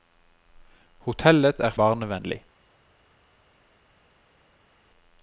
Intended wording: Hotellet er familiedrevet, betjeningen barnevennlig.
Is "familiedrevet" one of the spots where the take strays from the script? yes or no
yes